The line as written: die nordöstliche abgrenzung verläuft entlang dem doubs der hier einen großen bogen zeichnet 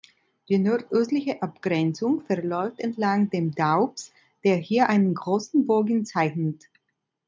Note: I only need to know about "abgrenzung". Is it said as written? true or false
true